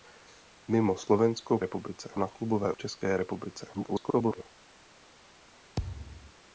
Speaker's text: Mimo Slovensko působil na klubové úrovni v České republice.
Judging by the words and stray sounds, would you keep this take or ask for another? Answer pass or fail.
fail